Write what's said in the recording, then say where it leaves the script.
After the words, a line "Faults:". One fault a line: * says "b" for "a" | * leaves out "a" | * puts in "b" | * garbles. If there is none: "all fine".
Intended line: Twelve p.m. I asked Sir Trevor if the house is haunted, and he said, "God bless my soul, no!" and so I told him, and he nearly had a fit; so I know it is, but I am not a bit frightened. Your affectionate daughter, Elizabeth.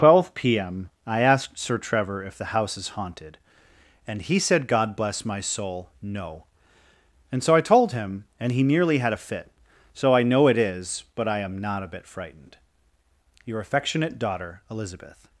Twelve p.m. I asked Sir Trevor if the house is haunted, and he said, "God bless my soul, no!" and so I told him, and he nearly had a fit; so I know it is, but I am not a bit frightened. Your affectionate daughter, Elizabeth.
Faults:
all fine